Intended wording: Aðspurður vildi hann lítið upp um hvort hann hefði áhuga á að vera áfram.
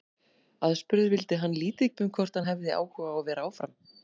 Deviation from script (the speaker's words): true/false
false